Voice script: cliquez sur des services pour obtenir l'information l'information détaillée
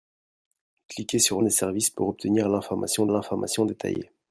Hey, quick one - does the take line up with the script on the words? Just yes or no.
yes